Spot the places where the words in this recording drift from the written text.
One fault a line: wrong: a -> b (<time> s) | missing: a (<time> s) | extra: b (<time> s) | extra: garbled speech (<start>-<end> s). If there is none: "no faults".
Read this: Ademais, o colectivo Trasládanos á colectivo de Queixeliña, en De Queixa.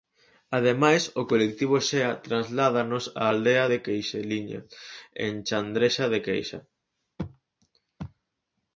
extra: Xea (1.9 s)
wrong: colectivo -> aldea (3.3 s)
extra: Chandrexa (5.5 s)